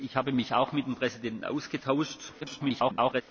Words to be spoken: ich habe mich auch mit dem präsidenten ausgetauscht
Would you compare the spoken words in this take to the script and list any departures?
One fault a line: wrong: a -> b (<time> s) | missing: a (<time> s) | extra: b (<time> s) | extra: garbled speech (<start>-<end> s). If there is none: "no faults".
extra: garbled speech (2.4-3.2 s)